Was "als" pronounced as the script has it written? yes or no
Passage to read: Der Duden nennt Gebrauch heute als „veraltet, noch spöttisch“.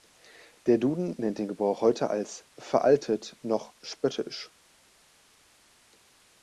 yes